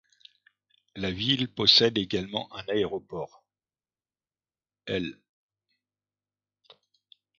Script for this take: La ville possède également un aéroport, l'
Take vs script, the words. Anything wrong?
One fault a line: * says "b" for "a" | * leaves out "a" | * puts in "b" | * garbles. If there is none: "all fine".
all fine